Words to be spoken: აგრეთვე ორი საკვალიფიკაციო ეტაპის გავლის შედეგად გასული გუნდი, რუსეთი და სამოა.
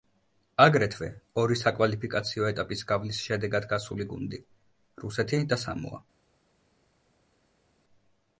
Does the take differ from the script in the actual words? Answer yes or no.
no